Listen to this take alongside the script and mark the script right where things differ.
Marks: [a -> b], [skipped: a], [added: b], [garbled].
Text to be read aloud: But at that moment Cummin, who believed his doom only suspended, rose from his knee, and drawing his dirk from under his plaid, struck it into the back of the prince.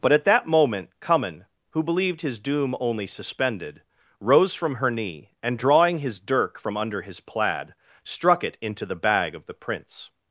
But at that moment Cummin, who believed his doom only suspended, rose from [his -> her] knee, and drawing his dirk from under his plaid, struck it into the [back -> bag] of the prince.